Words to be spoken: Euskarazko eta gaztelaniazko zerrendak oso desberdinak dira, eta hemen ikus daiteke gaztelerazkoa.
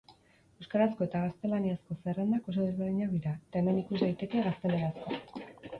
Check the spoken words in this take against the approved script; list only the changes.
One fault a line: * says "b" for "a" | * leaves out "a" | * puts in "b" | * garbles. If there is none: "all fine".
all fine